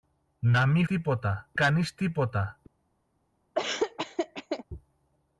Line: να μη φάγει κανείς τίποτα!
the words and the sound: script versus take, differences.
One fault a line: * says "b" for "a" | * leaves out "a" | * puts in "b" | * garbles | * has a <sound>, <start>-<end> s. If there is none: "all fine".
* says "τίποτα" for "φάγει"
* has a laugh, 3.5-4.6 s